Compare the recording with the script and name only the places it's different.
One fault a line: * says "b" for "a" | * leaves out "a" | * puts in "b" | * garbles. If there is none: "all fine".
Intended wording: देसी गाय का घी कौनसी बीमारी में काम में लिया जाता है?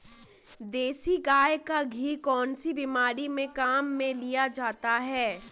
all fine